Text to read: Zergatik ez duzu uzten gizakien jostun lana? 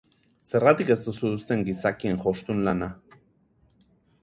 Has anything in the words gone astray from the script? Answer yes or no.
no